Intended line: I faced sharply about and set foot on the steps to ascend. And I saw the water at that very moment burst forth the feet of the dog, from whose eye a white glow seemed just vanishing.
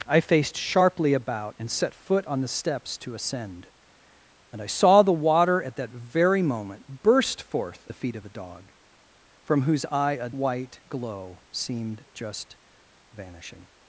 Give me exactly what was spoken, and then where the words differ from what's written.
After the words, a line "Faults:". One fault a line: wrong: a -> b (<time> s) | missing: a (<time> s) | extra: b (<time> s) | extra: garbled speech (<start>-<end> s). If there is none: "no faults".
I faced sharply about and set foot on the steps to ascend. And I saw the water at that very moment burst forth the feet of the dog, from whose eye a white glow seemed just vanishing.
Faults:
no faults